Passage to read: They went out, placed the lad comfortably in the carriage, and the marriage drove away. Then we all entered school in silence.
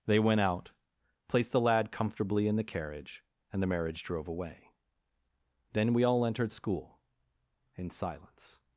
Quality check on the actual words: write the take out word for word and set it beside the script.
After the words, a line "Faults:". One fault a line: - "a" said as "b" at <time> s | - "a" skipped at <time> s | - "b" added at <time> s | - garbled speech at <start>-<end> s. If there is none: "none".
They went out, placed the lad comfortably in the carriage, and the marriage drove away. Then we all entered school in silence.
Faults:
none